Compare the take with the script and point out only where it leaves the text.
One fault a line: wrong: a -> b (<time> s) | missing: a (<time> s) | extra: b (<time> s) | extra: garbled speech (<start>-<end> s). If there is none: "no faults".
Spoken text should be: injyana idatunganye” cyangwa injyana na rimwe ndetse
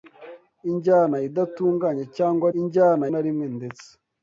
no faults